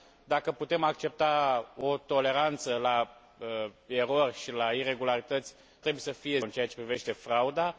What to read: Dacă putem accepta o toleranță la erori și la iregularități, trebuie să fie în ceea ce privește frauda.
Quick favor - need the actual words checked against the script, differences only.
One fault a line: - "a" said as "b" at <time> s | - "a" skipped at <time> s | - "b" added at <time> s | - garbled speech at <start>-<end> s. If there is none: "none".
none